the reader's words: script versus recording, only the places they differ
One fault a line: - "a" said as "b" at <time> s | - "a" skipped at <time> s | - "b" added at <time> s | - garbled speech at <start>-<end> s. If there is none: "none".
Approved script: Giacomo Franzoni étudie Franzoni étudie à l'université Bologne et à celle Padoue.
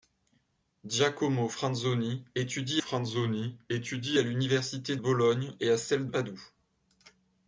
none